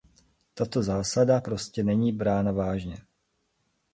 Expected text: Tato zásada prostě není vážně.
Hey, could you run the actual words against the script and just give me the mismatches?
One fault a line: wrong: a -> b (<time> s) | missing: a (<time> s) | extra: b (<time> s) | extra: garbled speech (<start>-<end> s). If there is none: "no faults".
extra: brána (2.1 s)